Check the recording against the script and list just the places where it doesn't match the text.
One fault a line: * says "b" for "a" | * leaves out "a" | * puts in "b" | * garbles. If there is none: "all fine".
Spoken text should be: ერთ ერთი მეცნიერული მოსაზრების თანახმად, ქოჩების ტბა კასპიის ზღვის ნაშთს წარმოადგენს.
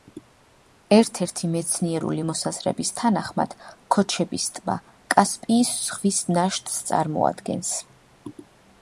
all fine